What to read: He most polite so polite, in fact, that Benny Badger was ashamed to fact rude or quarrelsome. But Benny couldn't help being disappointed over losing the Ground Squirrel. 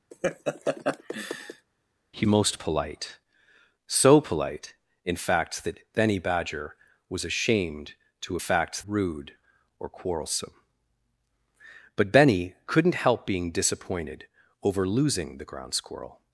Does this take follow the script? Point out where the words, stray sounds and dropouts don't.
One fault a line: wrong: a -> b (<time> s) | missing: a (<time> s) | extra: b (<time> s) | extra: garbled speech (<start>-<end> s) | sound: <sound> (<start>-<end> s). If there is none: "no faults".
sound: laugh (0.1-1.7 s)